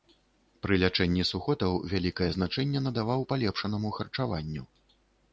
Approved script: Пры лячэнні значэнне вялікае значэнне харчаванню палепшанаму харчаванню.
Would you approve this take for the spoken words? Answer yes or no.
no